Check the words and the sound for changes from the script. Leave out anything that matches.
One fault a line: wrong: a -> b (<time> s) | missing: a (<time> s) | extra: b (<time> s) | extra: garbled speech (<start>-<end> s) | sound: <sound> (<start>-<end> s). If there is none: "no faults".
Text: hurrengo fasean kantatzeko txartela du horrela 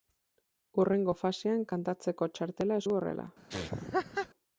sound: laugh (3.5-4.3 s)